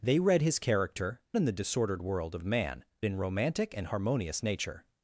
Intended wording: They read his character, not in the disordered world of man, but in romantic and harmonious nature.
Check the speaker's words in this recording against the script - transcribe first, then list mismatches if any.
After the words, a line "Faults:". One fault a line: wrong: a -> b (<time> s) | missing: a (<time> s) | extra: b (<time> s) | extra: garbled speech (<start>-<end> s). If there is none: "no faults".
They read his character, in the disordered world of man, in romantic and harmonious nature.
Faults:
missing: not (1.2 s)
missing: but (2.8 s)